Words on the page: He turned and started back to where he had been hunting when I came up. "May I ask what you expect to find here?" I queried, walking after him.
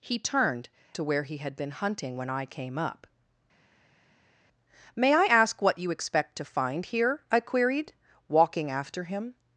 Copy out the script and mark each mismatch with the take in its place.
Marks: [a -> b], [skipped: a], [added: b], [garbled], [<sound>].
He turned [skipped: and started back] to where he had been hunting when I came up. "May I ask what you expect to find here?" I queried, walking after him.